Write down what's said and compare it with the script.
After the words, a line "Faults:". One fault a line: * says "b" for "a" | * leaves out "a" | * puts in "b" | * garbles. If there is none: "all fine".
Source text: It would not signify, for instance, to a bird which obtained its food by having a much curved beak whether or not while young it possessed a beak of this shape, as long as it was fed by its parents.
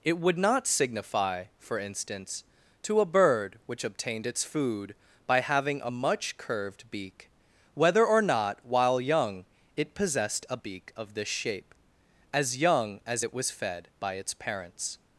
It would not signify, for instance, to a bird which obtained its food by having a much curved beak whether or not while young it possessed a beak of this shape, as young as it was fed by its parents.
Faults:
* says "young" for "long"